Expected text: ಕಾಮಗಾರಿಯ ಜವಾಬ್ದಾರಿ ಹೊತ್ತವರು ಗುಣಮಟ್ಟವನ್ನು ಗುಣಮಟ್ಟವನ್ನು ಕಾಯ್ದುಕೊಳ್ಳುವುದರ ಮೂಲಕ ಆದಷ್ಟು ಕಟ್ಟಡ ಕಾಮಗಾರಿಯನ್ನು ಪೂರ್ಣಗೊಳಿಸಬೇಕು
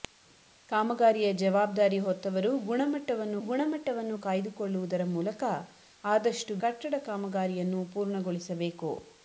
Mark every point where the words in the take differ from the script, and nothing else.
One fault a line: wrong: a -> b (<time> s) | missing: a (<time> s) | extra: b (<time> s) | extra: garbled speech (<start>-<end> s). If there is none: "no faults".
no faults